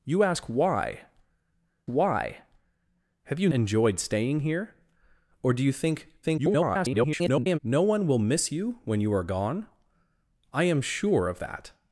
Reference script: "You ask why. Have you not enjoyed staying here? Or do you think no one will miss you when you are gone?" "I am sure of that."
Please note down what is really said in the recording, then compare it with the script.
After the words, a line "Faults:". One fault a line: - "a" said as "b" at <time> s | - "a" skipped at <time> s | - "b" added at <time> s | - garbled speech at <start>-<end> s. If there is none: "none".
"You ask why why. Have you enjoyed staying here? Or do you think [garbled] no one will miss you when you are gone?" "I am sure of that."
Faults:
- "why" added at 1.8 s
- "not" skipped at 3.5 s
- garbled speech at 6.2-7.6 s